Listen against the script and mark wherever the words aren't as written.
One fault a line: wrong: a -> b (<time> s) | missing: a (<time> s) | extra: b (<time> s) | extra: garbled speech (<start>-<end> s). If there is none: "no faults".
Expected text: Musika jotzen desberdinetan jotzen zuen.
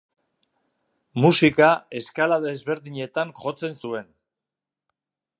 wrong: jotzen -> eskala (2.0 s)